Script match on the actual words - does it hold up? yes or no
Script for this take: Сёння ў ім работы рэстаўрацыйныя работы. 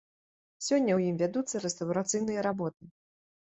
no